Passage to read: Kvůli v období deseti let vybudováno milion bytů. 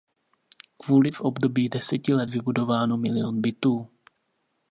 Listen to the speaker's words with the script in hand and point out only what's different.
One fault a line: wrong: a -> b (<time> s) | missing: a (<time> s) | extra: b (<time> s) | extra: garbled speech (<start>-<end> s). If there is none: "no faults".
no faults